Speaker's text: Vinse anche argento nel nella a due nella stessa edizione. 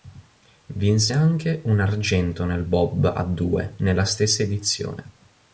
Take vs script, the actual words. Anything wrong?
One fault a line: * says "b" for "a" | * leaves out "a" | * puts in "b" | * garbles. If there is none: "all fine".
* puts in "un"
* says "bob" for "nella"